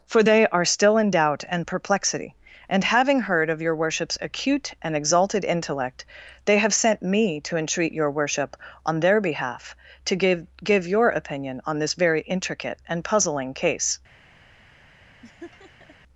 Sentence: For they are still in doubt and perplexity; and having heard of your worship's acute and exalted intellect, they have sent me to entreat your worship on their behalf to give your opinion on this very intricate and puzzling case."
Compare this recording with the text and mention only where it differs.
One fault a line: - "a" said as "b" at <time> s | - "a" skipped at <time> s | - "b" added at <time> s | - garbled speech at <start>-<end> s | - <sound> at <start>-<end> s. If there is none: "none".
- "give" added at 10.6 s
- laugh at 15.2-16.0 s